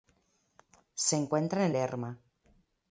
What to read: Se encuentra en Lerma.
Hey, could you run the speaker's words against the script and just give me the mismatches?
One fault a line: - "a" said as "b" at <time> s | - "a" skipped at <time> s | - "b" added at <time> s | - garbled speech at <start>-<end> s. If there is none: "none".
none